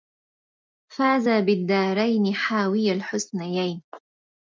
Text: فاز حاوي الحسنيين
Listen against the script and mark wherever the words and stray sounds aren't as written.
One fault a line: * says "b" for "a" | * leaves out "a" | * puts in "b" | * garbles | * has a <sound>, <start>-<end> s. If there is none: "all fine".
* puts in "بالدارين"